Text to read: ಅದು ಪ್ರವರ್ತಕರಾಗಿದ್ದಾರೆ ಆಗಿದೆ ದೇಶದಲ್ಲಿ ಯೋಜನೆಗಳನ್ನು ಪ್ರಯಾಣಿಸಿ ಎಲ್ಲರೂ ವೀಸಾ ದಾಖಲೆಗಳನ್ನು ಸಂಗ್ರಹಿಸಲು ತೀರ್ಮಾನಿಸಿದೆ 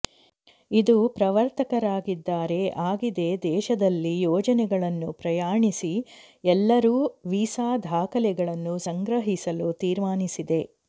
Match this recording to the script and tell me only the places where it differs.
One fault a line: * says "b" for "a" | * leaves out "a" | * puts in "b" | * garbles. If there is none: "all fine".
* says "ಇದು" for "ಅದು"